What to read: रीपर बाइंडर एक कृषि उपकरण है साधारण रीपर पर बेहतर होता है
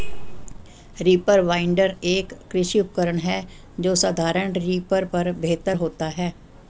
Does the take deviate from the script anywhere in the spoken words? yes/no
yes